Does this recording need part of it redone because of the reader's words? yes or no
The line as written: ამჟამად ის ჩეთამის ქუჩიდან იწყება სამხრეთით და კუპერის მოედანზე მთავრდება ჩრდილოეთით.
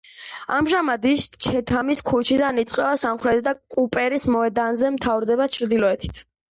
no